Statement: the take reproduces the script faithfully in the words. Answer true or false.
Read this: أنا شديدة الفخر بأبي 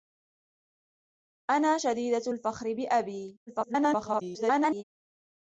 false